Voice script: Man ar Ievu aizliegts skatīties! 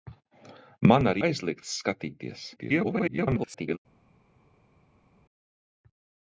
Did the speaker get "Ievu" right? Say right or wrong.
wrong